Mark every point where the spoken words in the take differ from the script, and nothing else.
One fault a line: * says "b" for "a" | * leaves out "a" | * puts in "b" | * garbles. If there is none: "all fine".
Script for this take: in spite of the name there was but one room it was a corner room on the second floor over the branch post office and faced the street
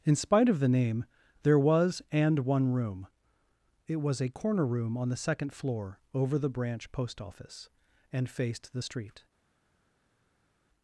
* says "and" for "but"